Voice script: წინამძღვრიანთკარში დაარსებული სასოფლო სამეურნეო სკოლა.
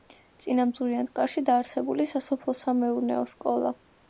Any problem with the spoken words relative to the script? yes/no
no